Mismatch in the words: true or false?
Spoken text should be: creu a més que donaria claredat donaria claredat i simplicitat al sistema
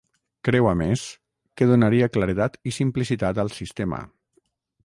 true